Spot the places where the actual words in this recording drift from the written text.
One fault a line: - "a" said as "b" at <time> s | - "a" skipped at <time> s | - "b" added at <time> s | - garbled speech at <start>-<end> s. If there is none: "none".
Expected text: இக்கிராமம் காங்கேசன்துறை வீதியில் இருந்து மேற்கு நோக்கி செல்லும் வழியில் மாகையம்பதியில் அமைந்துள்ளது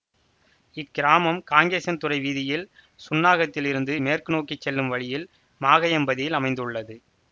- "சுன்னாகத்தில்" added at 3.0 s